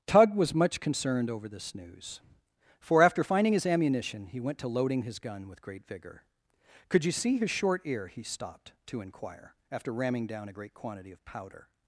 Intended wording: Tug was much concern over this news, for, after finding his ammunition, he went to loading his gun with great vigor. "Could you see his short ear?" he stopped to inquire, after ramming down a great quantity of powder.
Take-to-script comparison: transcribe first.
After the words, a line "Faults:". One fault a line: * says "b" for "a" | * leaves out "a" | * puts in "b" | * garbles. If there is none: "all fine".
Tug was much concerned over this news, for, after finding his ammunition, he went to loading his gun with great vigor. "Could you see his short ear?" he stopped to inquire, after ramming down a great quantity of powder.
Faults:
* says "concerned" for "concern"